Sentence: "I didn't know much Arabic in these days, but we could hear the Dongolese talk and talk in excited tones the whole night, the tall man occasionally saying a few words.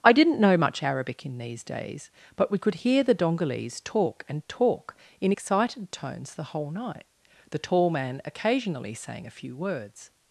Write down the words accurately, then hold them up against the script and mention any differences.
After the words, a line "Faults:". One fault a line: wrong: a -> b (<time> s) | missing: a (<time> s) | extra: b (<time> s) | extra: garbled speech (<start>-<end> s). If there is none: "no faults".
"I didn't know much Arabic in these days, but we could hear the Dongolese talk and talk in excited tones the whole night, the tall man occasionally saying a few words.
Faults:
no faults